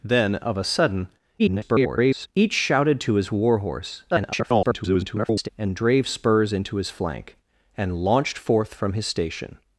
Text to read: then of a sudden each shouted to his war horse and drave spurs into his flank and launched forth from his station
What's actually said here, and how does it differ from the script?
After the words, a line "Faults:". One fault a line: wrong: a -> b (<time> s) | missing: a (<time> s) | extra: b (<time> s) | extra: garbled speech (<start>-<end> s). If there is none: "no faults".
then of a sudden [garbled] each shouted to his war horse [garbled] and drave spurs into his flank and launched forth from his station
Faults:
extra: garbled speech (1.4-2.3 s)
extra: garbled speech (4.1-5.5 s)